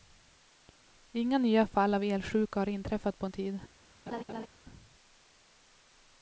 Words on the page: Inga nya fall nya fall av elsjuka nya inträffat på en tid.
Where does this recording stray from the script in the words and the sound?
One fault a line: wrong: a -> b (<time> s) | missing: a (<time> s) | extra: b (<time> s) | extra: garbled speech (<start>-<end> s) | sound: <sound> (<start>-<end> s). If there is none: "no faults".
missing: nya fall (1.9 s)
wrong: nya -> har (2.6 s)
sound: laugh (4.1-4.5 s)